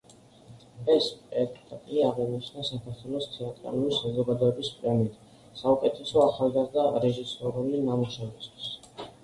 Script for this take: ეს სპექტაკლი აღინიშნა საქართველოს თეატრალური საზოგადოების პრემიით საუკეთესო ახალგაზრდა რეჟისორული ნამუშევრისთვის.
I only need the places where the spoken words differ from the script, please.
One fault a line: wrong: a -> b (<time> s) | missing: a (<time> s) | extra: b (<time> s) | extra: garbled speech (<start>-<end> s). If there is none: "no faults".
no faults